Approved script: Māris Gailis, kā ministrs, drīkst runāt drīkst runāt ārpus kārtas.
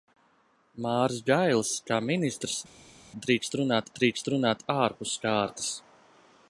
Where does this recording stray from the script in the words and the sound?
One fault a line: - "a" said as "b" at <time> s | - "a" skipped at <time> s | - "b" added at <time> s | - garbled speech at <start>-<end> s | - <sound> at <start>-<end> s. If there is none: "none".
none